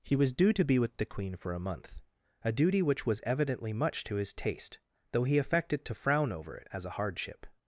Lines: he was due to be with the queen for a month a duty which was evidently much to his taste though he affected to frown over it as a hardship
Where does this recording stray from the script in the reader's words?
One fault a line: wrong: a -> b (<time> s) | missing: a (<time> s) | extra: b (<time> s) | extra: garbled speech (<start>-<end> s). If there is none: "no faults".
no faults